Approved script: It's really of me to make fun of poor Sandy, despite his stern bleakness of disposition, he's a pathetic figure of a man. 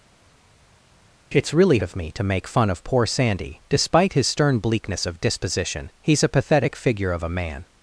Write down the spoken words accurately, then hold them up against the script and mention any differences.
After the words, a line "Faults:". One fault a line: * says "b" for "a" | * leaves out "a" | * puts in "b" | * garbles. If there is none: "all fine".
It's really of me to make fun of poor Sandy, despite his stern bleakness of disposition, he's a pathetic figure of a man.
Faults:
all fine